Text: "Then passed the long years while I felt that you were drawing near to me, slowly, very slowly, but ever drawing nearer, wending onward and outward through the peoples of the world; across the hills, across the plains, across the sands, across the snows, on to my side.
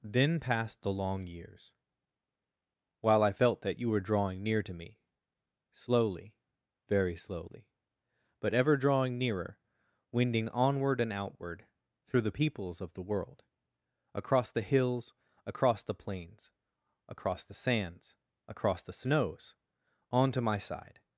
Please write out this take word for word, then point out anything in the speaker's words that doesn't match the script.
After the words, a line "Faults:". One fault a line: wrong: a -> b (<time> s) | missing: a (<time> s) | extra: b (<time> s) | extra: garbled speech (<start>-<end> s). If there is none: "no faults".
"Then passed the long years while I felt that you were drawing near to me, slowly, very slowly, but ever drawing nearer, wending onward and outward through the peoples of the world; across the hills, across the plains, across the sands, across the snows, on to my side.
Faults:
no faults